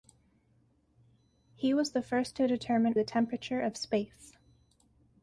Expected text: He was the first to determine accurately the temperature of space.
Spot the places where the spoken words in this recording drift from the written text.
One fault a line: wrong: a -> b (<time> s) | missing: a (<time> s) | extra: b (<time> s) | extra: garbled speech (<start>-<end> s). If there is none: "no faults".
missing: accurately (3.0 s)